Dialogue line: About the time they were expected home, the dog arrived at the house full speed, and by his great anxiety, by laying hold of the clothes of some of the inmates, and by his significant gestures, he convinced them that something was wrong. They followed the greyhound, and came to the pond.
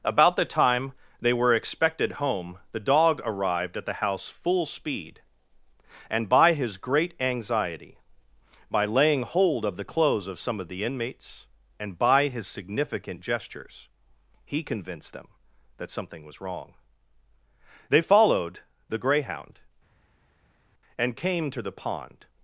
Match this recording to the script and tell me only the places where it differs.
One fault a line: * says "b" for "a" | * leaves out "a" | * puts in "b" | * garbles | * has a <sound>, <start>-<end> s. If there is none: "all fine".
all fine